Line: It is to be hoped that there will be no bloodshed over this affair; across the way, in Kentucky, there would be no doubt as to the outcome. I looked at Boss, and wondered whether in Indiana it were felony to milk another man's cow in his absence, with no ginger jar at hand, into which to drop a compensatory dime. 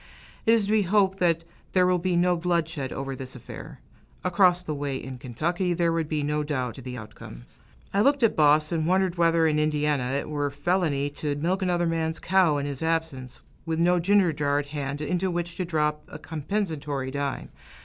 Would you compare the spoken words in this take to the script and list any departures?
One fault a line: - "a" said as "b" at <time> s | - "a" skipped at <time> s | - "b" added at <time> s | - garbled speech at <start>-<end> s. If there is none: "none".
- "as" skipped at 6.8 s